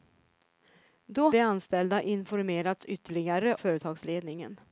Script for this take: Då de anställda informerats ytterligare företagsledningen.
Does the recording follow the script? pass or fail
pass